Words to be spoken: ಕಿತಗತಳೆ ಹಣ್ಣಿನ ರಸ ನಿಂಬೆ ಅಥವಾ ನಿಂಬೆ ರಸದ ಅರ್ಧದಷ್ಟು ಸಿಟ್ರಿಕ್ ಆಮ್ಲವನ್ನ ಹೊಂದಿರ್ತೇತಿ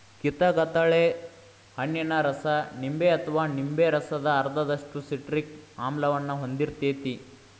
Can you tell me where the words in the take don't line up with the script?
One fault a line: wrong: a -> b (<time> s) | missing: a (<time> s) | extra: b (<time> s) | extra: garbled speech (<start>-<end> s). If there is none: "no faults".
no faults